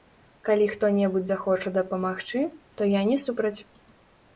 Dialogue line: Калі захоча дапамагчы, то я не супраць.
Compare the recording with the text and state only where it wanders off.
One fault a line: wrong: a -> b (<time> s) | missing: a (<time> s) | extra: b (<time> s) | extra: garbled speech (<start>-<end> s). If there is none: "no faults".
extra: хто небудзь (0.7 s)